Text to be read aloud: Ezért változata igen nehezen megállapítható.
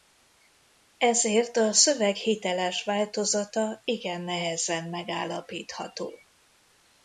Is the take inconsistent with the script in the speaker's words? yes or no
yes